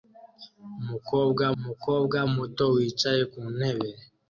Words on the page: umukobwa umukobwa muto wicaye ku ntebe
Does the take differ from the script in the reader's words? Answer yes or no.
no